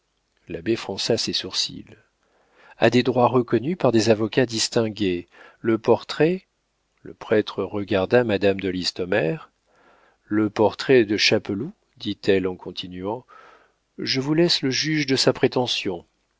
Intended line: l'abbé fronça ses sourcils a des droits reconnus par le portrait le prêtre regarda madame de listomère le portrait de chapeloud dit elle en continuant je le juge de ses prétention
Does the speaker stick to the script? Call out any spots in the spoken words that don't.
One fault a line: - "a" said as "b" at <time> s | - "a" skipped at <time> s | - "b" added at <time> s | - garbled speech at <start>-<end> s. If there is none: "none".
- "des avocats distingués" added at 3.9 s
- "vous laisse" added at 14.2 s
- "ses" said as "sa" at 15.2 s